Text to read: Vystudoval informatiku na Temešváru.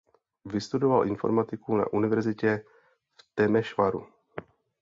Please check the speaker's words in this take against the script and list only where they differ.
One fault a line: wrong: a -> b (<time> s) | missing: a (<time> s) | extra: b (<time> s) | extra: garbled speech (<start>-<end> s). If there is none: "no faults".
extra: univerzitě v (1.9 s)